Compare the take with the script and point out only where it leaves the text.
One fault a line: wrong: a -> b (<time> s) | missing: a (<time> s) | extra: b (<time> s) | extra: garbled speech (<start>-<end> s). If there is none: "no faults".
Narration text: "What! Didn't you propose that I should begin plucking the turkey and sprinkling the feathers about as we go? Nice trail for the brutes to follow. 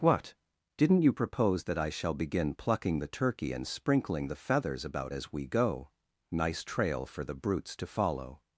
wrong: should -> shall (1.9 s)